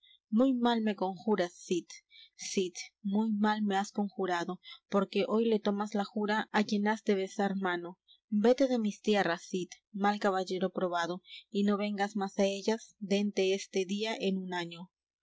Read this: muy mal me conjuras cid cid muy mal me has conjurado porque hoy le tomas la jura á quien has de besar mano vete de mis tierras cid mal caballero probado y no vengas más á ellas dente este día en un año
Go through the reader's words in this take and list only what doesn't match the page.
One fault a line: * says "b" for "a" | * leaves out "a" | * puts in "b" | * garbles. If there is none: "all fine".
all fine